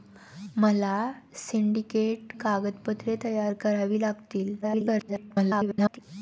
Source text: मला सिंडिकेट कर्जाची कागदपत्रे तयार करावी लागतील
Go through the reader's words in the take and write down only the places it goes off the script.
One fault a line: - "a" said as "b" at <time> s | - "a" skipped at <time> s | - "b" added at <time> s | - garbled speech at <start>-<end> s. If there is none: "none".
- "कर्जाची" skipped at 2.3 s
- garbled speech at 4.6-6.0 s